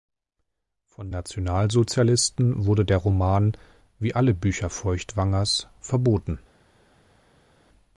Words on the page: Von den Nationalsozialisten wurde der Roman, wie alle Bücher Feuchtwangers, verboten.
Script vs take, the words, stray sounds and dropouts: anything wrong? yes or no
yes